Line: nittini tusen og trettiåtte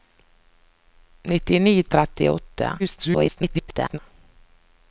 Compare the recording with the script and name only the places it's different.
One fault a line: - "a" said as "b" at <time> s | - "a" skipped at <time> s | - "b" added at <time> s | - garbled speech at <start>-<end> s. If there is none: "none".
- "tusen" skipped at 1.8 s
- garbled speech at 2.8-4.0 s